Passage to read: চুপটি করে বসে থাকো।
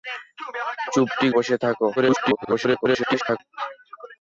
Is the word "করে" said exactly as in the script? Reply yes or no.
no